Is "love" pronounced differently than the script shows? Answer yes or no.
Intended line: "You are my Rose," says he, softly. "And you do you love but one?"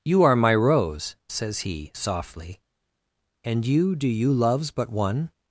yes